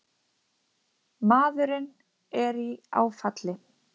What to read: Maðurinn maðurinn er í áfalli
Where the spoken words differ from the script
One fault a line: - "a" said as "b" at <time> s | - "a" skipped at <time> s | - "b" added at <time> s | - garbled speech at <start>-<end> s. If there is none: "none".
- "maðurinn" skipped at 1.9 s